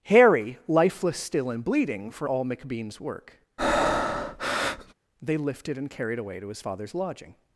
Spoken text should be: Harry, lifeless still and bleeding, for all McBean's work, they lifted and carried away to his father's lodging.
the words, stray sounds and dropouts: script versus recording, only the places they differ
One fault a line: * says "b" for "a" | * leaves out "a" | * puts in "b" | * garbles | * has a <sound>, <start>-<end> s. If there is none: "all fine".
* has a breath, 3.6-4.9 s